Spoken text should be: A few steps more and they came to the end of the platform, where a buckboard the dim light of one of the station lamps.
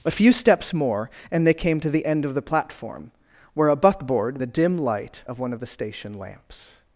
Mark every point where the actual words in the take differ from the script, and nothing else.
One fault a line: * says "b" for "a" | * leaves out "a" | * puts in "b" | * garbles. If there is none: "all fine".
all fine